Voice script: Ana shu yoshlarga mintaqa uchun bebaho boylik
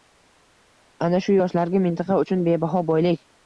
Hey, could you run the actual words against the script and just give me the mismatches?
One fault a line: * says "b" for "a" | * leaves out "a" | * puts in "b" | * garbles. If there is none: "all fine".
all fine